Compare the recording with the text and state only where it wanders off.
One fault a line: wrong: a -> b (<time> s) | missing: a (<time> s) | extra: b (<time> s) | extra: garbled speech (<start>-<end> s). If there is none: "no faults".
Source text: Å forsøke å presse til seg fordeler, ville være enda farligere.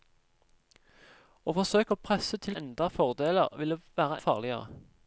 wrong: seg -> enda (2.6 s)
missing: enda (4.2 s)